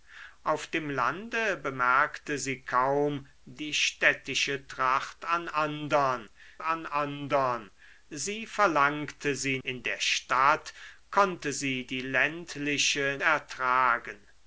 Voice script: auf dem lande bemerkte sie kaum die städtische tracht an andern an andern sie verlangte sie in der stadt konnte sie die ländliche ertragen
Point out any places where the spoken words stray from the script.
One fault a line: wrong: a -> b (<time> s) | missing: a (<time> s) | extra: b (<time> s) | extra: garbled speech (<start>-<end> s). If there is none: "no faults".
no faults